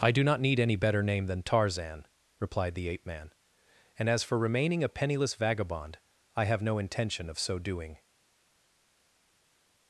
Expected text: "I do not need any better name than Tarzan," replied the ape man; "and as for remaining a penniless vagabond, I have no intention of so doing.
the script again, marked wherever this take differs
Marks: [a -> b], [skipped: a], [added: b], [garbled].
"I do not need any better name than Tarzan," replied the ape man; "and as for remaining a penniless vagabond, I have no intention of so doing.